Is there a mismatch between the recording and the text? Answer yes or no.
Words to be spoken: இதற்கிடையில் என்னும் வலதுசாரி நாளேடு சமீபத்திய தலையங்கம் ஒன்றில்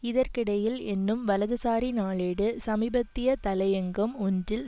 no